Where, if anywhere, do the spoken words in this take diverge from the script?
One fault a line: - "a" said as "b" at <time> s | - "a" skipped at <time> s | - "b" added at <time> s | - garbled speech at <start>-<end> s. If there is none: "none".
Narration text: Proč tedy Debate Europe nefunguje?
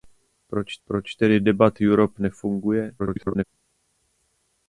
- "proč" added at 0.9 s
- garbled speech at 3.0-3.4 s